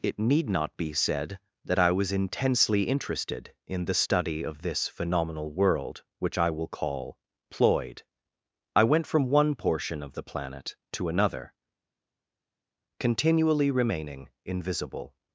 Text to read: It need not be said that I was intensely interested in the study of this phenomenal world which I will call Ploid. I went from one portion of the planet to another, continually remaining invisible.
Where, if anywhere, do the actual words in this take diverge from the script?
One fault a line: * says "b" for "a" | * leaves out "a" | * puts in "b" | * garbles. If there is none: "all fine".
all fine